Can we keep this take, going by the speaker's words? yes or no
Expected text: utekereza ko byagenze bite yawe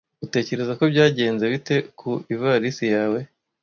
no